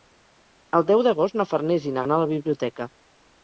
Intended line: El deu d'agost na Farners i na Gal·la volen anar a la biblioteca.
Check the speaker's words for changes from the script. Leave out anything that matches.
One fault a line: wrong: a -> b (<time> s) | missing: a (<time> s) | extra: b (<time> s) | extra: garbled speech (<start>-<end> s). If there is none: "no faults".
missing: Gal·la volen (2.1 s)